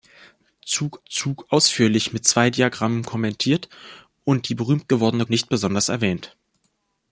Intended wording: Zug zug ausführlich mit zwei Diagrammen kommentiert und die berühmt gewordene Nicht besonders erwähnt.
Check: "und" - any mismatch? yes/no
no